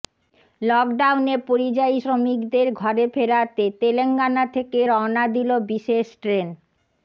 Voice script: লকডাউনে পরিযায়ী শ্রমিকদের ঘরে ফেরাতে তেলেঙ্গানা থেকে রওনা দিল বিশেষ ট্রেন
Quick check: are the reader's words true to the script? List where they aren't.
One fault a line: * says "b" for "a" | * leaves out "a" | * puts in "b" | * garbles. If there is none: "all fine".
all fine